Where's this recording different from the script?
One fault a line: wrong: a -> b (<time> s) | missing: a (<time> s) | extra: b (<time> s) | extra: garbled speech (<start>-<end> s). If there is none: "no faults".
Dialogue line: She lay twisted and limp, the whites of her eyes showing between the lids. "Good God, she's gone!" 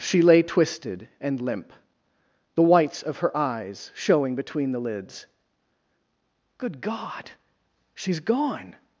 no faults